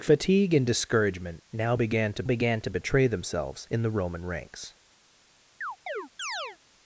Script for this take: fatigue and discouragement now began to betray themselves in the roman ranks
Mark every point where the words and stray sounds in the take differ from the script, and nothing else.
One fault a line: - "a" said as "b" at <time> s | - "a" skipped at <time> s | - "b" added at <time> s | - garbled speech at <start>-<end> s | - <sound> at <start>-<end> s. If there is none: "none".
- "began to" added at 2.2 s
- chirp at 5.6-6.6 s